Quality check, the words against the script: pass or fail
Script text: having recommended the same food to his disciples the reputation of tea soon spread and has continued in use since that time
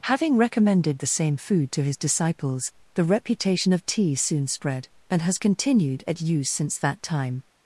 fail